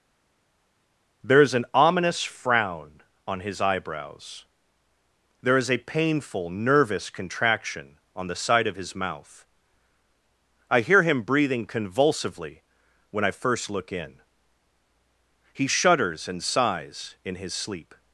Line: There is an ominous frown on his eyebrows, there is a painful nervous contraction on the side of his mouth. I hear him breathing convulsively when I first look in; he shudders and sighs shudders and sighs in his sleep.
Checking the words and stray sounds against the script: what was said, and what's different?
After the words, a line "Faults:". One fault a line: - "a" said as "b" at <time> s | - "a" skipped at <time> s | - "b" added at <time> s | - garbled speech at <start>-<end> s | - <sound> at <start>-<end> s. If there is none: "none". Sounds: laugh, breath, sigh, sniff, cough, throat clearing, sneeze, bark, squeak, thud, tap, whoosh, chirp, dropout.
There is an ominous frown on his eyebrows, there is a painful nervous contraction on the side of his mouth. I hear him breathing convulsively when I first look in; he shudders and sighs in his sleep.
Faults:
- "shudders and sighs" skipped at 17.2 s